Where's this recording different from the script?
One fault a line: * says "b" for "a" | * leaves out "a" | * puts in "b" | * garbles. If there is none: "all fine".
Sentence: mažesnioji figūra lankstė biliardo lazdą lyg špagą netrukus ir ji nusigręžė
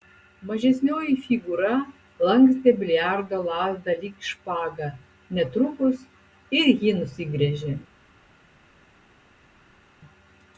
all fine